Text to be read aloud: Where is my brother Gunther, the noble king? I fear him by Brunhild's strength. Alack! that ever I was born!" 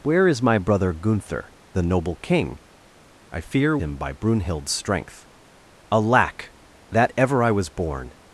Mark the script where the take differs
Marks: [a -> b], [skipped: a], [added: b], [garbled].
Where is my brother Gunther, the noble king? I fear him by Brunhild's strength. Alack! that ever I was born!"